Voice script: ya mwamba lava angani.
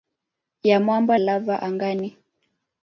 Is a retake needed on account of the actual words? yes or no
no